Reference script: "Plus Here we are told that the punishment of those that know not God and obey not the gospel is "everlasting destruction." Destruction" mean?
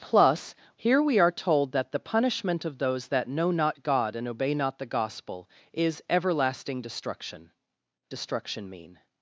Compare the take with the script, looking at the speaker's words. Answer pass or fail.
pass